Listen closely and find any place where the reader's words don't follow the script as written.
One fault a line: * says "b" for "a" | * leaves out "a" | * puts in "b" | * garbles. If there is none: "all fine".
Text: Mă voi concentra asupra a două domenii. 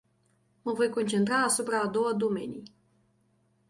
all fine